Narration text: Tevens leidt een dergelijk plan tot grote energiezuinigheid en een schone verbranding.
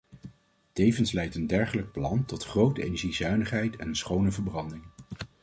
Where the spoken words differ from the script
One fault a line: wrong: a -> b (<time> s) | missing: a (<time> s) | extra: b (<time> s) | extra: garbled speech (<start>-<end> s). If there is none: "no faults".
no faults